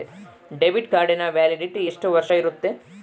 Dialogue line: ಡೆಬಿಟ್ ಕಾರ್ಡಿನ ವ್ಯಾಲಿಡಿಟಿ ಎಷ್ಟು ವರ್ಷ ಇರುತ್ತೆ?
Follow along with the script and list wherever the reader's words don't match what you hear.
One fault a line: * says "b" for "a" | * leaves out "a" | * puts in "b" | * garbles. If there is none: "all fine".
all fine